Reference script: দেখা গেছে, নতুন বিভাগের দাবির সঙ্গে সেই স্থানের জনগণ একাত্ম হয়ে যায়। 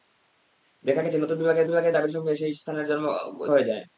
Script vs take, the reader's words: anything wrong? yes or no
yes